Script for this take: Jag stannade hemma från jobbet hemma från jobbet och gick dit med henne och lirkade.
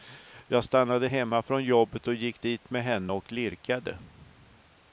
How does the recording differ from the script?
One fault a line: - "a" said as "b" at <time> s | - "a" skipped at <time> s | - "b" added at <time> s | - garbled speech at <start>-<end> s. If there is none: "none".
- "hemma från jobbet" skipped at 2.1 s